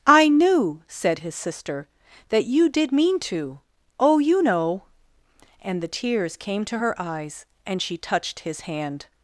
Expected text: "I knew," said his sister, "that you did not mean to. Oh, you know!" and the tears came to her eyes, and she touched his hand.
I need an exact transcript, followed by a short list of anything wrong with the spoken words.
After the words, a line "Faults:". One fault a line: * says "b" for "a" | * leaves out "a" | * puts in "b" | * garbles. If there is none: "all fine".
"I knew," said his sister, "that you did mean to. Oh, you know!" and the tears came to her eyes, and she touched his hand.
Faults:
* leaves out "not"